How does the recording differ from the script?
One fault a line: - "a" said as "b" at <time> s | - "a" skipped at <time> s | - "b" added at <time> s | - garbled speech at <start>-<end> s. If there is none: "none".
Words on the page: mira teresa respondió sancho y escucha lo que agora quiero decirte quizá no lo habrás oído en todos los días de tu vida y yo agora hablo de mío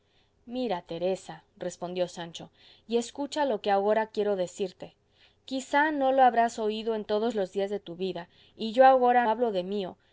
none